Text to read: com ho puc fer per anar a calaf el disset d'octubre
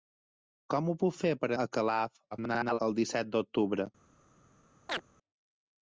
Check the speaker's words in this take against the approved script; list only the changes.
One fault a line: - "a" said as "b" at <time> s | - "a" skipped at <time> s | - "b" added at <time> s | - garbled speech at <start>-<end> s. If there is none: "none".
- "anar" skipped at 1.5 s
- garbled speech at 2.3-2.8 s